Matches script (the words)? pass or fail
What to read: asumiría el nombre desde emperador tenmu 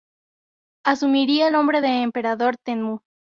fail